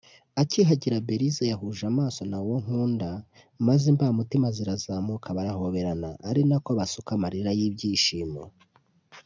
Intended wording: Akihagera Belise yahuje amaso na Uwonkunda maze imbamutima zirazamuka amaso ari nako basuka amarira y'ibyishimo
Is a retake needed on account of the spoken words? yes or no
yes